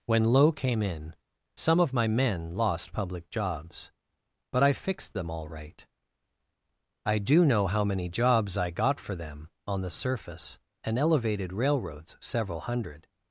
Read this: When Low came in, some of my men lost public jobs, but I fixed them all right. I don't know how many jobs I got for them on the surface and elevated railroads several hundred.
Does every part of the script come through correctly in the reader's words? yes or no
no